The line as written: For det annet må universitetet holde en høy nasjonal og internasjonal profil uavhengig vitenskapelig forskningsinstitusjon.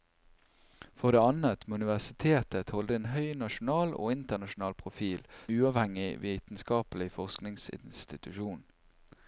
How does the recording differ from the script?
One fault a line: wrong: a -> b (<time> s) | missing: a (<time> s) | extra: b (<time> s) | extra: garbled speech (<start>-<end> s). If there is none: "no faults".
no faults